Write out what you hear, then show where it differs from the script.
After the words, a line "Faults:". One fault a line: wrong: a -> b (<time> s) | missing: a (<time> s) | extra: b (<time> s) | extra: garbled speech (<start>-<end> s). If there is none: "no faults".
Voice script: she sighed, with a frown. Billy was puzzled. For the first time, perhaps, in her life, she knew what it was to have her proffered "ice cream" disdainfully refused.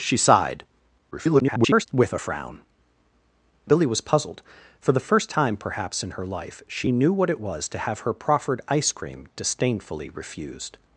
she sighed, [garbled] with a frown. Billy was puzzled. For the first time, perhaps, in her life, she knew what it was to have her proffered "ice cream" disdainfully refused.
Faults:
extra: garbled speech (1.1-1.9 s)